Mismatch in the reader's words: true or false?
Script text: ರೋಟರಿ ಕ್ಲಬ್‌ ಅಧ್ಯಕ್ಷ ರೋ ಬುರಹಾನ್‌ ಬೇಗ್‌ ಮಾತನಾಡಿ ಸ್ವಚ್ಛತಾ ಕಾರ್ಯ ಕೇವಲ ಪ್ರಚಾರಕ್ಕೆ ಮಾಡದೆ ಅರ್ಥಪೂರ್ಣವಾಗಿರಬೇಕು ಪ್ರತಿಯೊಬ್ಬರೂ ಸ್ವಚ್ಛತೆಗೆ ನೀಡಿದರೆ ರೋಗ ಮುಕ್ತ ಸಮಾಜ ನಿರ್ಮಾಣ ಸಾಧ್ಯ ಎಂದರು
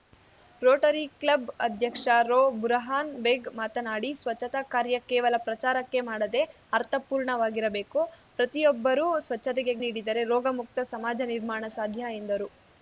false